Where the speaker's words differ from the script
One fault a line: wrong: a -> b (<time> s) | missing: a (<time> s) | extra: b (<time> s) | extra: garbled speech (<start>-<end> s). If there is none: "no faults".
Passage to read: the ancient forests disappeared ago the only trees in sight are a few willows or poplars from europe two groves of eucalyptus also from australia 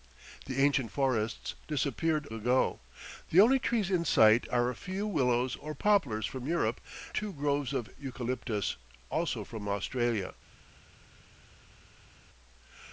no faults